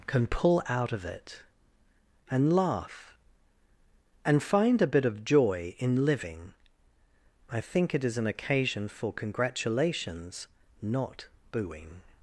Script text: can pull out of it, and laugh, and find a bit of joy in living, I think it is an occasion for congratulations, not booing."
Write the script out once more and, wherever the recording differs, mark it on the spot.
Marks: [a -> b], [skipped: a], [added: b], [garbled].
can pull out of it, and laugh, and find a bit of joy in living, I think it is an occasion for congratulations, not booing."